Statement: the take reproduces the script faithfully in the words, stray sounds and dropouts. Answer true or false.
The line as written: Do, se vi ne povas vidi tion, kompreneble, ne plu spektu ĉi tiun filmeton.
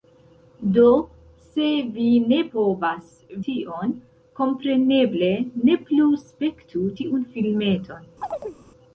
false